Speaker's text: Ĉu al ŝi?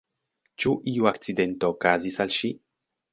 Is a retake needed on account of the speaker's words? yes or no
yes